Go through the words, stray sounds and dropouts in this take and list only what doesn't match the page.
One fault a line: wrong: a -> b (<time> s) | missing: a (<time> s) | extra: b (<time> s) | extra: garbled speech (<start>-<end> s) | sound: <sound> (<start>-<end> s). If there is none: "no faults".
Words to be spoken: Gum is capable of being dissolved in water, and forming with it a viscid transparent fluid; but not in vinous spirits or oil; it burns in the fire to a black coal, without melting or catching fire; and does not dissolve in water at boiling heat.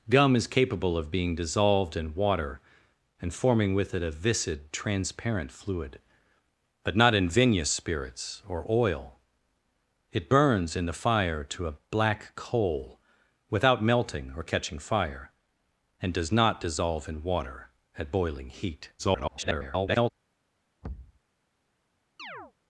extra: garbled speech (19.0-20.1 s)
sound: thud (20.8-21.2 s)
sound: chirp (22.2-22.5 s)